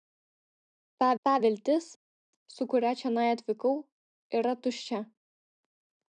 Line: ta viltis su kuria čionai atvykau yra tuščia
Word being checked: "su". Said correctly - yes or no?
yes